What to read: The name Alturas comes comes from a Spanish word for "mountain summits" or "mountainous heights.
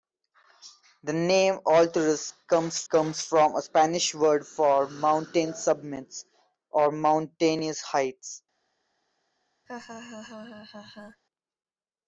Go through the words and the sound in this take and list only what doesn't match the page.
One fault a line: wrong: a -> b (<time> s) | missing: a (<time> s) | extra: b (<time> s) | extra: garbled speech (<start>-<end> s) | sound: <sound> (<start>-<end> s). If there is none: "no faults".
sound: laugh (9.7-11.2 s)